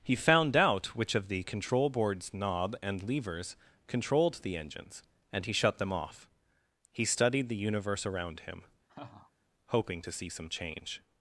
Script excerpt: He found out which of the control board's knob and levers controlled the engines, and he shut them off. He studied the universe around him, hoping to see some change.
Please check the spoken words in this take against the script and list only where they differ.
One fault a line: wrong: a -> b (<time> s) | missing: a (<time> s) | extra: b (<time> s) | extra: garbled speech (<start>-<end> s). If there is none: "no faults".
no faults